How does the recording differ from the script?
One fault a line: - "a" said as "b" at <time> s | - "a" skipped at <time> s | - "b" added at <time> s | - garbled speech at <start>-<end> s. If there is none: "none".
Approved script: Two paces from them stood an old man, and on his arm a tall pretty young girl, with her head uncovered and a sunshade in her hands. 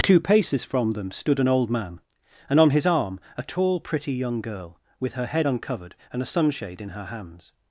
none